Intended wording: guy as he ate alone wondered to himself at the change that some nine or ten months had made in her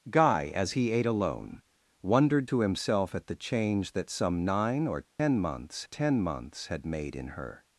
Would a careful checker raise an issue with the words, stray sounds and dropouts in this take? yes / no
yes